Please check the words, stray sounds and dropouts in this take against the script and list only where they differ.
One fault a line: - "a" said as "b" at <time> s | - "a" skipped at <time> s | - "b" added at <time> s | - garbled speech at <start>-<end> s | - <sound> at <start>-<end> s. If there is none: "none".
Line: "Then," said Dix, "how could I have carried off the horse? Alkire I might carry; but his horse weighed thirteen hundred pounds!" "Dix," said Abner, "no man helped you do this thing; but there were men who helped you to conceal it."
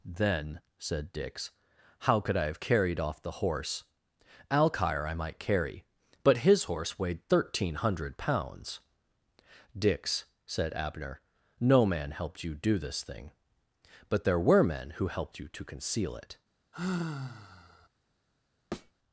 - sigh at 16.7-17.9 s
- thud at 18.7-18.9 s